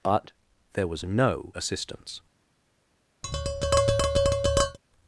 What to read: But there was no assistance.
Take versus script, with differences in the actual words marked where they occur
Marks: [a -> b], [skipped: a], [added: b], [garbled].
But there was no assistance.